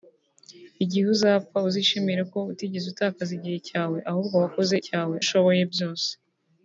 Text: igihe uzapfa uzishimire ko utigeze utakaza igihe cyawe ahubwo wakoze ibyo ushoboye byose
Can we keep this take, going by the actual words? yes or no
no